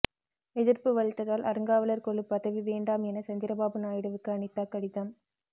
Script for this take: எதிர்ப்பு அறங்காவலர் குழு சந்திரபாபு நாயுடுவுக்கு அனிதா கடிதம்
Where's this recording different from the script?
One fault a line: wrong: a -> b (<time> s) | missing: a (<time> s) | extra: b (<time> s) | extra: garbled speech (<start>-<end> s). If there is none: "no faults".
extra: வலுத்ததால் (0.9 s)
extra: பதவி வேண்டாம் என (2.2 s)